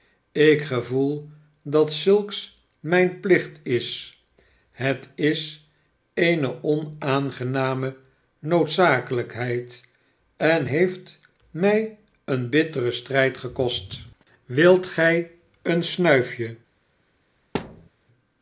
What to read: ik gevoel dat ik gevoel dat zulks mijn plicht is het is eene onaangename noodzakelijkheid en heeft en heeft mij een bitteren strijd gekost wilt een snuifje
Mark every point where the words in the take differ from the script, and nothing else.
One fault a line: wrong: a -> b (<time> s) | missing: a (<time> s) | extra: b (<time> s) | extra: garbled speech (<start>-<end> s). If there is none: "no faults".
missing: ik gevoel dat (1.9 s)
missing: en heeft (11.2 s)
extra: gij (14.9 s)